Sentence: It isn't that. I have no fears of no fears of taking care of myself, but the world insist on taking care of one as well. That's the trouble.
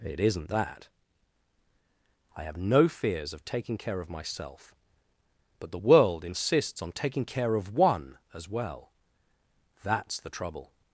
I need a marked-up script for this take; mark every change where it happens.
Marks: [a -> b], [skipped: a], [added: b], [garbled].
It isn't that. I have no fears of [skipped: no fears of] taking care of myself, but the world [insist -> insists] on taking care of one as well. That's the trouble.